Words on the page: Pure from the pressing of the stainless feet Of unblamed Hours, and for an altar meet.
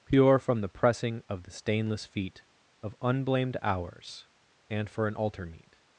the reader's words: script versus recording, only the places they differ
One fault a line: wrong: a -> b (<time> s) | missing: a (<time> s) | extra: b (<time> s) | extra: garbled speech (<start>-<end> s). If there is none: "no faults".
no faults